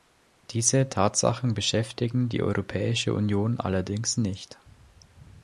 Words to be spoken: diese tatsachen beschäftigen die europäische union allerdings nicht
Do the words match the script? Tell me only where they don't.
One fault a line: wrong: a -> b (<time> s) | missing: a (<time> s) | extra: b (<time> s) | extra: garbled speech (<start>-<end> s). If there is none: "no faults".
no faults